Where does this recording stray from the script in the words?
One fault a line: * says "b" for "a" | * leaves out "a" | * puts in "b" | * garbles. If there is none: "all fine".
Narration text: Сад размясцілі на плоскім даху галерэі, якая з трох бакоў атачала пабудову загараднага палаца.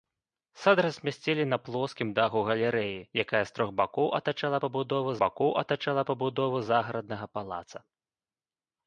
* puts in "бакоў атачала пабудову"